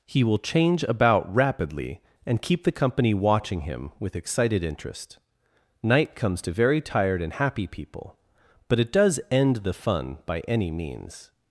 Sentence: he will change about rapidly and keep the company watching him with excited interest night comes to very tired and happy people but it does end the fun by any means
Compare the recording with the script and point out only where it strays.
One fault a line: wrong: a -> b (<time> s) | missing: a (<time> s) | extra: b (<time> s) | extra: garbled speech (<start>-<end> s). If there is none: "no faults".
no faults